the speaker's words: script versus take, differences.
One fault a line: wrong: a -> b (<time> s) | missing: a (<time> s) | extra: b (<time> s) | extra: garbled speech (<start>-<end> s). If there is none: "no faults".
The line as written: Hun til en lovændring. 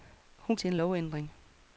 no faults